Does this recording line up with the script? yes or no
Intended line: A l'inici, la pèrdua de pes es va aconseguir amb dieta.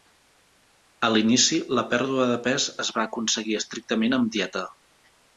no